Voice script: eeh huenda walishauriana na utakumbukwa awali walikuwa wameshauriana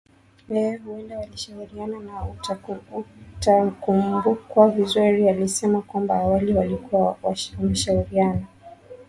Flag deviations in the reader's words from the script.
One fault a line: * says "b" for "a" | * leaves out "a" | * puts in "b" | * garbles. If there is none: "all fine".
* puts in "vizuri alisema kwamba"